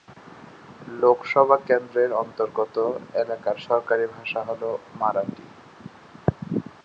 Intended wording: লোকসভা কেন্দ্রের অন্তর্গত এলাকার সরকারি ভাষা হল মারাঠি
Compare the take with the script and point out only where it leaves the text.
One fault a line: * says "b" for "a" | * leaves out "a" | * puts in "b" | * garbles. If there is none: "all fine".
all fine